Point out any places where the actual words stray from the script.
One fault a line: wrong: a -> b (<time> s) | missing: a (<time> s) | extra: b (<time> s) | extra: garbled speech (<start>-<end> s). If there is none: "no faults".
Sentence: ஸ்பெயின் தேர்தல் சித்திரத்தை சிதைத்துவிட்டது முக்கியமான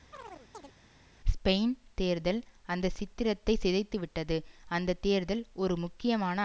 extra: அந்த (2.7 s)
extra: அந்த தேர்தல் ஒரு (4.7 s)